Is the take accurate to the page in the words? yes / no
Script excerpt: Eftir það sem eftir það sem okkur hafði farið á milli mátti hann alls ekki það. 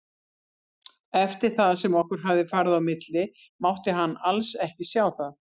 no